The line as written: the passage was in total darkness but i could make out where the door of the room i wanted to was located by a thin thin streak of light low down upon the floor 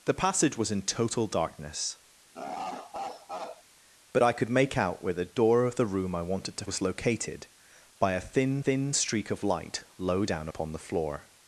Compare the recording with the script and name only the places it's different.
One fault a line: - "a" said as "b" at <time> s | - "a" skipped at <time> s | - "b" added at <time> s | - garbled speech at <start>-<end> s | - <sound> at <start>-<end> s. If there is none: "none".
- laugh at 2.3-3.6 s